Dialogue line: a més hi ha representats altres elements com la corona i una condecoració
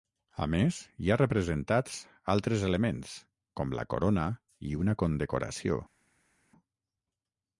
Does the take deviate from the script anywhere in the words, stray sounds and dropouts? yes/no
no